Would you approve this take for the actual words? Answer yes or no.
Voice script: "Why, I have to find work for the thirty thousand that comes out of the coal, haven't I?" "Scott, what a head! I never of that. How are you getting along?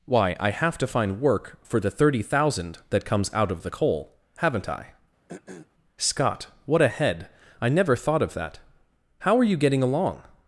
no